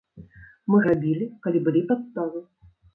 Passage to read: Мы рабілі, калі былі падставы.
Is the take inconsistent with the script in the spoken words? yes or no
no